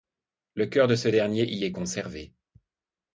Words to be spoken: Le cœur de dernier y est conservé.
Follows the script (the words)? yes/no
no